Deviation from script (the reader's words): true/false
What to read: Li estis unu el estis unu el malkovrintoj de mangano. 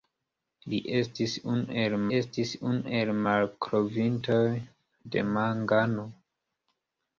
false